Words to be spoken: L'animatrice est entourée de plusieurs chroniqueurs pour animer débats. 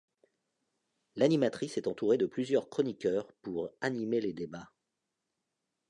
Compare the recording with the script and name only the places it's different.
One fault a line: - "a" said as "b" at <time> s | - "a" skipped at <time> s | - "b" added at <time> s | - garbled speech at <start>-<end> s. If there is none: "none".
- "les" added at 4.2 s